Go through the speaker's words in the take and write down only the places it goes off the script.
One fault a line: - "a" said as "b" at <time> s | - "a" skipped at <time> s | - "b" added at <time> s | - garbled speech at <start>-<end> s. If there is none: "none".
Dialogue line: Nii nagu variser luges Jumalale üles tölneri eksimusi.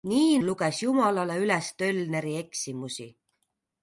- "nagu variser" skipped at 0.4 s